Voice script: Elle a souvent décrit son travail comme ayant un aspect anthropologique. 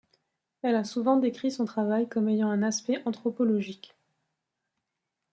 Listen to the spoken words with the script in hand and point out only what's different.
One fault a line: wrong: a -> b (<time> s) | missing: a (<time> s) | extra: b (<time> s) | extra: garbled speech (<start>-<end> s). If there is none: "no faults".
no faults